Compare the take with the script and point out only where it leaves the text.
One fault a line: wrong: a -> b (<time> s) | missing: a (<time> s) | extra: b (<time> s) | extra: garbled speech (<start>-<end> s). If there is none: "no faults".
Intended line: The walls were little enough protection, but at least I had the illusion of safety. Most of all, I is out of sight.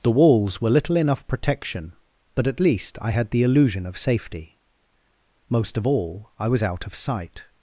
wrong: is -> was (6.5 s)